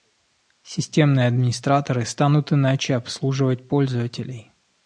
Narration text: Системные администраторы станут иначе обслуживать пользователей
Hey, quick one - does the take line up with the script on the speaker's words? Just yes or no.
yes